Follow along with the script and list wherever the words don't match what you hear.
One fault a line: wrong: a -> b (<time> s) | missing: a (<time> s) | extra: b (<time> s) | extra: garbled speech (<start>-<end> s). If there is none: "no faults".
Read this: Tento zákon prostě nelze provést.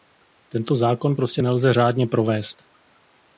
extra: řádně (1.7 s)